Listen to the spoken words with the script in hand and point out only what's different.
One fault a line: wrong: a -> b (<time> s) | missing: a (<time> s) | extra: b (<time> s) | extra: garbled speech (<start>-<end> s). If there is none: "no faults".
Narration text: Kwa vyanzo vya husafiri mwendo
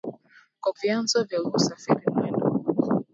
no faults